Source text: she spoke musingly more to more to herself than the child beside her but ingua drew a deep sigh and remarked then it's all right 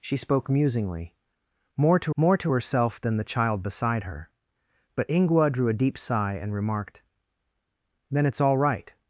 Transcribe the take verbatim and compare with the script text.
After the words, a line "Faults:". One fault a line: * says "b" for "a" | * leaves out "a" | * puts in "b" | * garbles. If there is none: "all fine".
she spoke musingly more to more to herself than the child beside her but ingua drew a deep sigh and remarked then it's all right
Faults:
all fine